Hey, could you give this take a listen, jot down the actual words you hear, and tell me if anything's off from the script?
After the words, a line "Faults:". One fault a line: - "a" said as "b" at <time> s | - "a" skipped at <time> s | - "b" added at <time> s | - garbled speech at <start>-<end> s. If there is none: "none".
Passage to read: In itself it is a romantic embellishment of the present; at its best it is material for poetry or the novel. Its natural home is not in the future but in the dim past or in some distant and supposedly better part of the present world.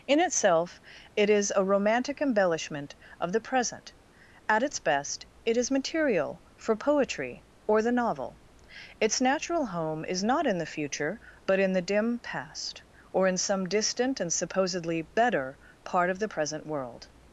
In itself it is a romantic embellishment of the present; at its best it is material for poetry or the novel. Its natural home is not in the future but in the dim past or in some distant and supposedly better part of the present world.
Faults:
none